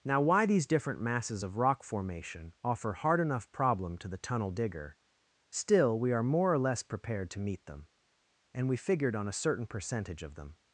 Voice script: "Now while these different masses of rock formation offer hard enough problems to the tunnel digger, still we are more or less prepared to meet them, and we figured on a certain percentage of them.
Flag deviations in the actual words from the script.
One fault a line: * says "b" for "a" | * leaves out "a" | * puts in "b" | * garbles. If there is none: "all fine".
* says "why" for "while"
* says "problem" for "problems"